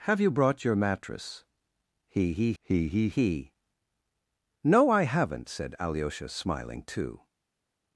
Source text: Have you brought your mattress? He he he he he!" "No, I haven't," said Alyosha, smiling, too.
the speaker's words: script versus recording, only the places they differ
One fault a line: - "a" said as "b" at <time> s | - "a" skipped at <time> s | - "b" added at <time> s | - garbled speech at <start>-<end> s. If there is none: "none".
none